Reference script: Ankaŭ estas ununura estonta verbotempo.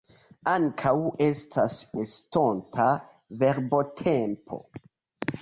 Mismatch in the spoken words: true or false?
true